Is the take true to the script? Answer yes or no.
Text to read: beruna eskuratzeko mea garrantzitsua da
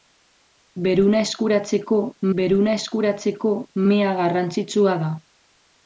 no